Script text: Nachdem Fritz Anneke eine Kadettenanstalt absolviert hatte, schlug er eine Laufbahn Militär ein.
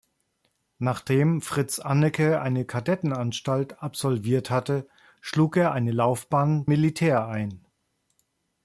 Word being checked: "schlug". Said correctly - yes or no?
yes